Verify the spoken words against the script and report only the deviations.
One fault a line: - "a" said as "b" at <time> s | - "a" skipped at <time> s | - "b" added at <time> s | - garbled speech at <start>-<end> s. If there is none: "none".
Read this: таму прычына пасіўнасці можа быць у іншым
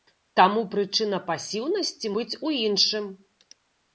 - "можа" skipped at 2.1 s